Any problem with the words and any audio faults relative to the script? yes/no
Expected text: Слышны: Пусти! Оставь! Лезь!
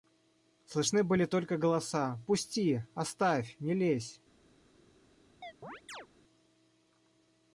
yes